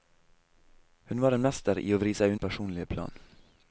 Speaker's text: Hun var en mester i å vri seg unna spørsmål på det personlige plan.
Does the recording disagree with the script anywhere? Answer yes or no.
yes